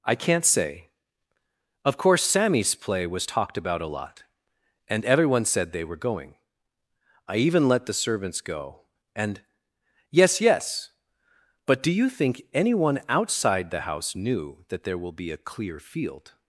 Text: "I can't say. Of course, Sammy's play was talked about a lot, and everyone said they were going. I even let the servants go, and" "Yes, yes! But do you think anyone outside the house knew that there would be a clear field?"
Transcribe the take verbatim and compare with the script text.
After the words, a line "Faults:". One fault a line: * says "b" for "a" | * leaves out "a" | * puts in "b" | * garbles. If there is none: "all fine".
"I can't say. Of course, Sammy's play was talked about a lot, and everyone said they were going. I even let the servants go, and" "Yes, yes! But do you think anyone outside the house knew that there will be a clear field?"
Faults:
* says "will" for "would"